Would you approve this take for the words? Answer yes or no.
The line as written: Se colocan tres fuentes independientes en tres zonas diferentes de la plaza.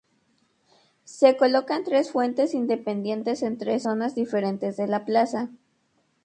yes